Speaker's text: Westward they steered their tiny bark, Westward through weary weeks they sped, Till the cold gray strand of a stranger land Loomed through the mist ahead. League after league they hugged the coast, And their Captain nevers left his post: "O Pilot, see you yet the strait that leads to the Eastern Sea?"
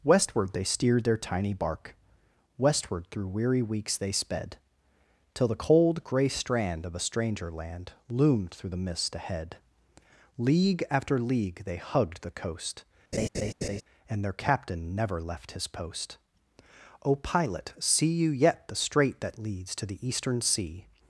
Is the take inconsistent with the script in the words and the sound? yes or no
yes